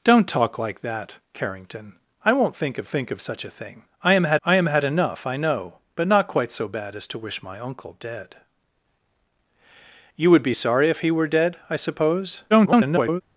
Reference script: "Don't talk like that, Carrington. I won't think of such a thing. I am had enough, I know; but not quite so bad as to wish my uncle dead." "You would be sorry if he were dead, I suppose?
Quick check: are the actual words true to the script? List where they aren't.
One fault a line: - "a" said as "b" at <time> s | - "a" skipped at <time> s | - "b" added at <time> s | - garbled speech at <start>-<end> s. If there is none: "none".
- "think of" added at 2.9 s
- "I am had" added at 4.4 s
- garbled speech at 12.5-13.2 s